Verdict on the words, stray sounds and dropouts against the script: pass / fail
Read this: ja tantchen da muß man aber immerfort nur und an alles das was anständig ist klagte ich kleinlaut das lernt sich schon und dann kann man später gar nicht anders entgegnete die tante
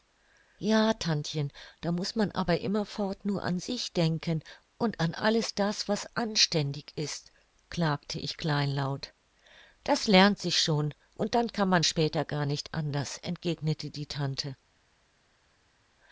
fail